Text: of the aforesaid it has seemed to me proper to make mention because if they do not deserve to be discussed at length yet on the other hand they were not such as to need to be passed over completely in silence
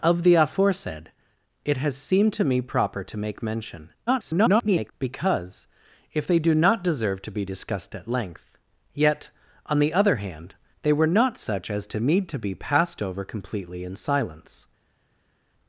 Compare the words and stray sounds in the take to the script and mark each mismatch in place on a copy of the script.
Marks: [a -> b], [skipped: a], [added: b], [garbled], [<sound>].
of the aforesaid it has seemed to me proper to make mention [garbled] because if they do not deserve to be discussed at length yet on the other hand they were not such as to need to be passed over completely in silence